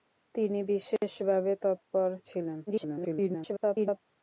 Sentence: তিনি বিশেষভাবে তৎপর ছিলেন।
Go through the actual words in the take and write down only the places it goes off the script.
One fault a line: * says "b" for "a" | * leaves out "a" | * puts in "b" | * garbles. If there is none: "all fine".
* garbles